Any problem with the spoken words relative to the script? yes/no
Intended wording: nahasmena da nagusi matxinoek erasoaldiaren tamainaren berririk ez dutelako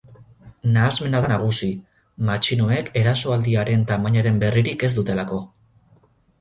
no